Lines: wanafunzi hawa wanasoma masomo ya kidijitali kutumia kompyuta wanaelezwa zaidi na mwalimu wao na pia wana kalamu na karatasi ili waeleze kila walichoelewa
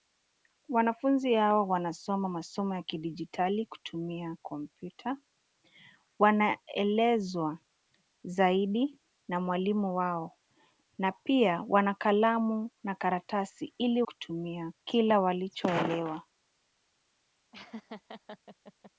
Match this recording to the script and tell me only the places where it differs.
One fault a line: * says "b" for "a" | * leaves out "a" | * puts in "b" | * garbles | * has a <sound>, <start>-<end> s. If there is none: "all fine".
* says "kutumia" for "waeleze"
* has a laugh, 17.5-18.9 s